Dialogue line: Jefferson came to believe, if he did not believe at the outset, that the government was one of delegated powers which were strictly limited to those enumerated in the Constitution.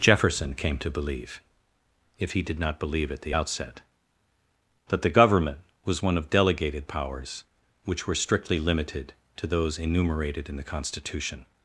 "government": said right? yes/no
yes